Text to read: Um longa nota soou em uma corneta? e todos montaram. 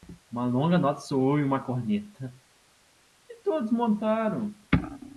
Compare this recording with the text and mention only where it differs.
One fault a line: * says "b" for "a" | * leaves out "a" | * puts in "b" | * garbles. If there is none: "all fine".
* says "Uma" for "Um"